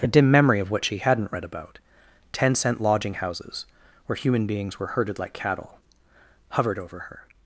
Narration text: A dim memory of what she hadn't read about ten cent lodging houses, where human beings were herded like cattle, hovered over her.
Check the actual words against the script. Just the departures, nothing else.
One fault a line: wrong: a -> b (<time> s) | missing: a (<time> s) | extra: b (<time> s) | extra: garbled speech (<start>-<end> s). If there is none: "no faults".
no faults